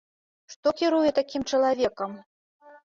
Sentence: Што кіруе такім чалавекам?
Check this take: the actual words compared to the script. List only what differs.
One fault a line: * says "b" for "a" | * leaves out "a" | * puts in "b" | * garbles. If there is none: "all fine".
all fine